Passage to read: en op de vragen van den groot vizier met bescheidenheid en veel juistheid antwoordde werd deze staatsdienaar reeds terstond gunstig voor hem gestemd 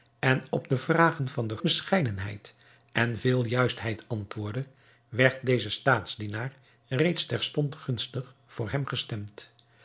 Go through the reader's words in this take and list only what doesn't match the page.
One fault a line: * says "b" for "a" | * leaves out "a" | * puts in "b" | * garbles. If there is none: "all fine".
* leaves out "groot vizier met"